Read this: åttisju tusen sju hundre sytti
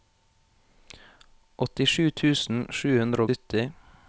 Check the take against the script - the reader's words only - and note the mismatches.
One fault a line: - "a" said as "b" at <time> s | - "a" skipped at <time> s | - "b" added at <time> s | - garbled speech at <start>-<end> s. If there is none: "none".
none